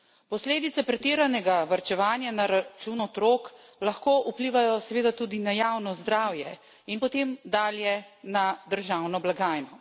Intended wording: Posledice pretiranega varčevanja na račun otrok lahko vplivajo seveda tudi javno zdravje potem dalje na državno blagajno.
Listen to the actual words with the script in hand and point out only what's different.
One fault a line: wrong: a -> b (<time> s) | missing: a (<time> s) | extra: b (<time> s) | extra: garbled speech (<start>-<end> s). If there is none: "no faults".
extra: na (5.4 s)
extra: in (6.9 s)